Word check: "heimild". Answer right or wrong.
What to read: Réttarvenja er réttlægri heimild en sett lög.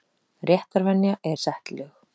wrong